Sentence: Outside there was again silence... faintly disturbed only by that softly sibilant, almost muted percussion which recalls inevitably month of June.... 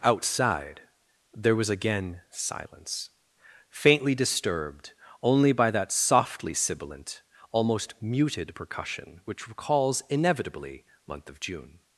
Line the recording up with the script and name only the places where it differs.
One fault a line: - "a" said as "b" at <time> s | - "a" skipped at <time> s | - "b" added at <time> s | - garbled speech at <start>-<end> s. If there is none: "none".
none